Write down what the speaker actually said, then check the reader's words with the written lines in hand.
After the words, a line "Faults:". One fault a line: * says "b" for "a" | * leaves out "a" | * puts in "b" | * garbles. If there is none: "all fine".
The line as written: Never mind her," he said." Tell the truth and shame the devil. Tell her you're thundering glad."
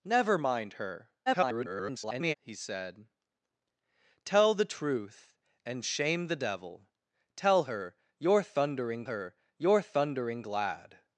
Never mind her," [garbled] he said." Tell the truth and shame the devil. Tell her you're thundering her you're thundering glad."
Faults:
* garbles
* puts in "her you're thundering"